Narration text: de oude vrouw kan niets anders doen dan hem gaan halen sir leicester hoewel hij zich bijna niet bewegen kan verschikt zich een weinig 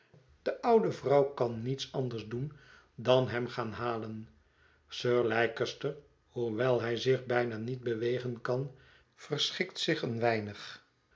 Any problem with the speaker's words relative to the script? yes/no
no